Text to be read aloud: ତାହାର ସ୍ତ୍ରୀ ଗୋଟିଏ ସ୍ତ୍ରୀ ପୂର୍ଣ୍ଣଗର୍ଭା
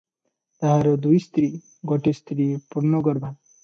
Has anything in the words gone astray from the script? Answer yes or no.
yes